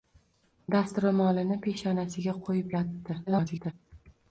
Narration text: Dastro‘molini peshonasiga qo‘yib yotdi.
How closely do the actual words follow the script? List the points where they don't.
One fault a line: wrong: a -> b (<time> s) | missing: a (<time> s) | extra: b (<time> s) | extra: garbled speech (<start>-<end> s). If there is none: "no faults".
extra: garbled speech (3.3-3.7 s)